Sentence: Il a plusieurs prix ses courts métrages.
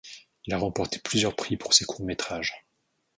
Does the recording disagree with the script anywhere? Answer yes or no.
yes